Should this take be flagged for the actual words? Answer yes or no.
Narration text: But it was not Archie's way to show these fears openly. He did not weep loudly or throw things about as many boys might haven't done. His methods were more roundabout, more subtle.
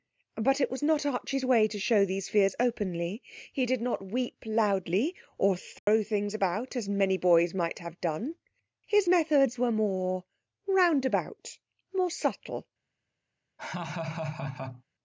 yes